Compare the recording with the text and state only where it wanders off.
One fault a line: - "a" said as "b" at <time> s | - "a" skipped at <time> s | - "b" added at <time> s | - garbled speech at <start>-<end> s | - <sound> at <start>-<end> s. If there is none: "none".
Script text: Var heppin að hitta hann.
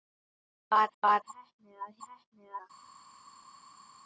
- "var" added at 1.0 s
- "hitta" said as "heppin" at 2.1 s